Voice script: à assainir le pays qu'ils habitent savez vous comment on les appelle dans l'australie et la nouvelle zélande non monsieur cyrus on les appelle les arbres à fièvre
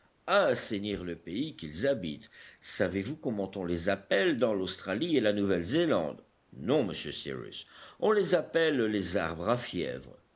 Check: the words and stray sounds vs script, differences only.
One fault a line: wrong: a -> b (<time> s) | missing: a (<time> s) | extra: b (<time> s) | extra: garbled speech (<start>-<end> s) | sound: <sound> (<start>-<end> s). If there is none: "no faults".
no faults